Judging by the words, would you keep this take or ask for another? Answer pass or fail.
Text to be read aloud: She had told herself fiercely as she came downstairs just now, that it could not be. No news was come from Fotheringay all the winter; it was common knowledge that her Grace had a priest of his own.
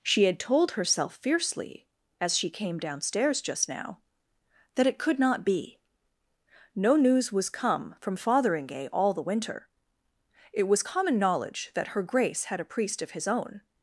pass